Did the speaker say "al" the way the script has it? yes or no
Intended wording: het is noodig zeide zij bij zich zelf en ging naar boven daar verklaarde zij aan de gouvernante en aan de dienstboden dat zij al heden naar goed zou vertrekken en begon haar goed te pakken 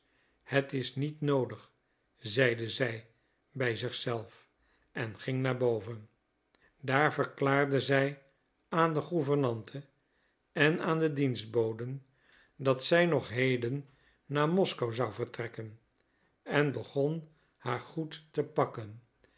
no